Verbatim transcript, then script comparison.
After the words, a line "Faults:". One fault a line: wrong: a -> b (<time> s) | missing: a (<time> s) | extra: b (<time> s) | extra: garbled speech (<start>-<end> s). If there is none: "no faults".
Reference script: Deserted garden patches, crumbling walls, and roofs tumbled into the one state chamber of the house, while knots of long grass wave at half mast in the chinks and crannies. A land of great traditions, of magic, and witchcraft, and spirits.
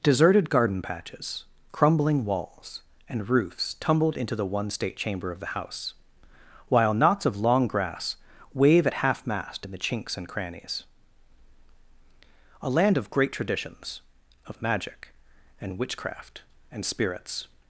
Deserted garden patches, crumbling walls, and roofs tumbled into the one state chamber of the house, while knots of long grass wave at half mast in the chinks and crannies. A land of great traditions, of magic, and witchcraft, and spirits.
Faults:
no faults